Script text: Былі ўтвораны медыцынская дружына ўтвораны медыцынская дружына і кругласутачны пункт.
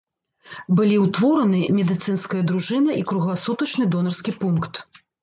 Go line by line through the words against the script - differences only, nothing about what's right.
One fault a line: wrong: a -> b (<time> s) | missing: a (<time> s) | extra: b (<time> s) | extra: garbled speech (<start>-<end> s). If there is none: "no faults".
missing: ўтвораны медыцынская дружына (3.0 s)
extra: донарскі (4.0 s)